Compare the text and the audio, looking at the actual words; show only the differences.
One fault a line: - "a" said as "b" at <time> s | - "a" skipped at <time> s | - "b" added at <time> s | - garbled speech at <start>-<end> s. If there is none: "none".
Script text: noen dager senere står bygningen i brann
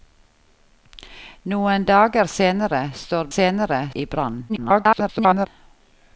- "bygningen" said as "senere" at 3.4 s
- garbled speech at 4.5-5.5 s